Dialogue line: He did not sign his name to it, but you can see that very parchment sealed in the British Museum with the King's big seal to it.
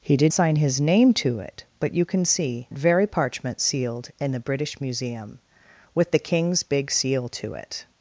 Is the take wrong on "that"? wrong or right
wrong